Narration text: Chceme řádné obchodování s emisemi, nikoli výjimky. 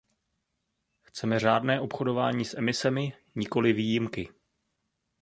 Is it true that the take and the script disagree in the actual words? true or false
false